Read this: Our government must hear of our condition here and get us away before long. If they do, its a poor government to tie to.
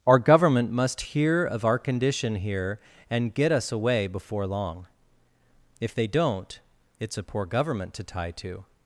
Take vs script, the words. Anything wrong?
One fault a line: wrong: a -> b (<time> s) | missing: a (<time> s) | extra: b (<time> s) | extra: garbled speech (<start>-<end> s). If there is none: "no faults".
wrong: do -> don't (6.1 s)